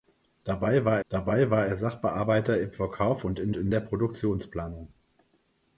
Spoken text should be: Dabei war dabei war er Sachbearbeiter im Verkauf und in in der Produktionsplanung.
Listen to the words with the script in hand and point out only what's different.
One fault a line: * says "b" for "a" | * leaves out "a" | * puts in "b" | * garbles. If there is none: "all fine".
all fine